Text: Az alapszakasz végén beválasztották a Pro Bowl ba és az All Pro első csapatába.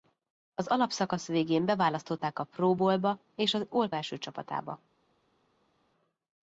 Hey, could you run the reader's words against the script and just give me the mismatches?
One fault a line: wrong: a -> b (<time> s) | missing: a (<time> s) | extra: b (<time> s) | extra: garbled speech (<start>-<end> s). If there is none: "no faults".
missing: Pro (3.9 s)